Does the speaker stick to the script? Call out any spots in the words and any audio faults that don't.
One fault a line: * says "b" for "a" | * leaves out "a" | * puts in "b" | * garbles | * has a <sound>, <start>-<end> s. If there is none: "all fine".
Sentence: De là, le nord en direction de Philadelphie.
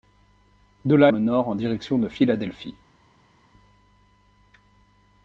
all fine